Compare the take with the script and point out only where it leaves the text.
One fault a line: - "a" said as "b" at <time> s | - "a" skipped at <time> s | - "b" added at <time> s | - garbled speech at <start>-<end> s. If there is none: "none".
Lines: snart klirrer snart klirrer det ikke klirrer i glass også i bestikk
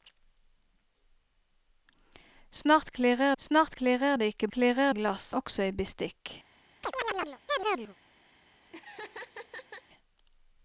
none